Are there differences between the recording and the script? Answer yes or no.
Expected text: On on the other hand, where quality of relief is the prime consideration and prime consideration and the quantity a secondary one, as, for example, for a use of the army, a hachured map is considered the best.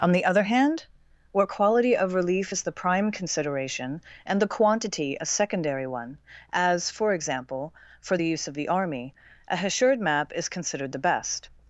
yes